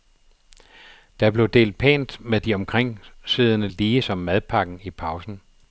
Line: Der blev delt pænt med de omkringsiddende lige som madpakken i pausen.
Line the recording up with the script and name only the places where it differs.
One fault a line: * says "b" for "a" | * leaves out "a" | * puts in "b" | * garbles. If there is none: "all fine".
all fine